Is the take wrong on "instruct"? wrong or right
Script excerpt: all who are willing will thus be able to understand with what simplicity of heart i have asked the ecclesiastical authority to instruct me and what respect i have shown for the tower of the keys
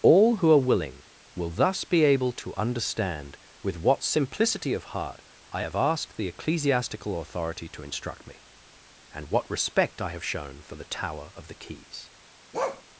right